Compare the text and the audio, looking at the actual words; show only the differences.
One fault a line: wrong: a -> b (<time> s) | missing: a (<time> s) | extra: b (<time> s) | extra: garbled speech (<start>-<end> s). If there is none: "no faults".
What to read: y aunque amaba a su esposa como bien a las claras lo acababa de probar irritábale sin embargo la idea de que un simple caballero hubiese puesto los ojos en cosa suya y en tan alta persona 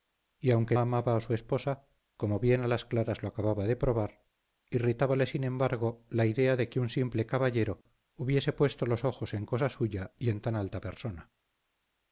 no faults